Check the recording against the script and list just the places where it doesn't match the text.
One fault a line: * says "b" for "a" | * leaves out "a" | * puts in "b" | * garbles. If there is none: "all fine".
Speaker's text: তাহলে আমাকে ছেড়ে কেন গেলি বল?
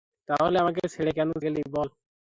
all fine